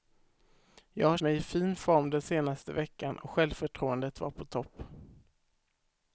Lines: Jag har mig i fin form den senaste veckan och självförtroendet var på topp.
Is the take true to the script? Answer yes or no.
yes